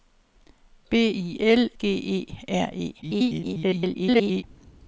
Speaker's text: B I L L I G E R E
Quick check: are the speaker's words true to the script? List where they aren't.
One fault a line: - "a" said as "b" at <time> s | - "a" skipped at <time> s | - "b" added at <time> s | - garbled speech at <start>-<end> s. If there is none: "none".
- "L I" skipped at 1.7 s
- garbled speech at 3.0-4.4 s